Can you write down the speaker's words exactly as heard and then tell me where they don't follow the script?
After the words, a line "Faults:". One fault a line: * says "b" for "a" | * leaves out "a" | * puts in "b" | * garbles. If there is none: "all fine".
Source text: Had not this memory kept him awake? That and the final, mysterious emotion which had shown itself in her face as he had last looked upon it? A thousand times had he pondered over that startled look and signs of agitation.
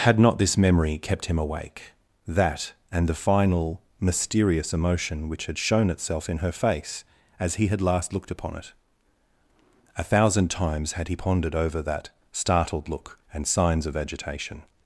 Had not this memory kept him awake? That and the final, mysterious emotion which had shown itself in her face as he had last looked upon it? A thousand times had he pondered over that startled look and signs of agitation.
Faults:
all fine